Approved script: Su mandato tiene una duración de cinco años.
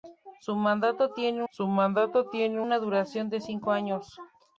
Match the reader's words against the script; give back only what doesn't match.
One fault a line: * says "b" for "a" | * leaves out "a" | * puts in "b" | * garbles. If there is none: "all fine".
* puts in "su mandato tiene"